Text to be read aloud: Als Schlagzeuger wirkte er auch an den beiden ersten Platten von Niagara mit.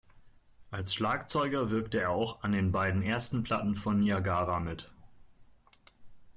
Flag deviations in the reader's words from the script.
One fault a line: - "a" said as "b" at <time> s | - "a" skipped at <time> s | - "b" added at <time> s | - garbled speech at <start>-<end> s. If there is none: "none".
none